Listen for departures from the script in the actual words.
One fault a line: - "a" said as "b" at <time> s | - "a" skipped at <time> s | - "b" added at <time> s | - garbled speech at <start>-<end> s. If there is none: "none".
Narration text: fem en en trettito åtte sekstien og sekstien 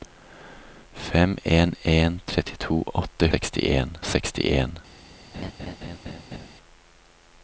none